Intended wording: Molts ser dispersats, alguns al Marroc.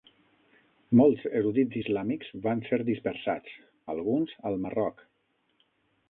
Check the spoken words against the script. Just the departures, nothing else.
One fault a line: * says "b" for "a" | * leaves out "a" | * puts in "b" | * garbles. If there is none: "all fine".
* puts in "erudits islàmics van"